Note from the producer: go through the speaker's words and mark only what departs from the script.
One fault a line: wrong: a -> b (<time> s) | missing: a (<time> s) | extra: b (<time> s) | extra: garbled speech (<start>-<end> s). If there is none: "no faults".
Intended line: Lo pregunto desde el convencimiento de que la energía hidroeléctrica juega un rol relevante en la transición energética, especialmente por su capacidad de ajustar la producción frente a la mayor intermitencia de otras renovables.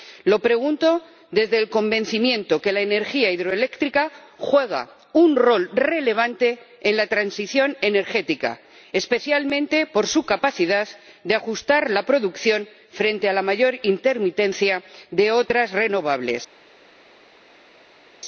no faults